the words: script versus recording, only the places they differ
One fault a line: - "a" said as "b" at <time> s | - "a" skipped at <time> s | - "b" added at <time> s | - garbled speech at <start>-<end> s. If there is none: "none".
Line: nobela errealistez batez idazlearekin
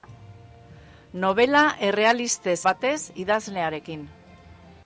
none